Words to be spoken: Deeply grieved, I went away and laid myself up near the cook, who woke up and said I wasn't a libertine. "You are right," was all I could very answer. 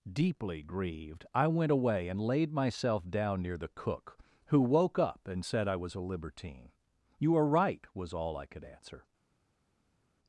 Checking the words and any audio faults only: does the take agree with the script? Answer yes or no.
no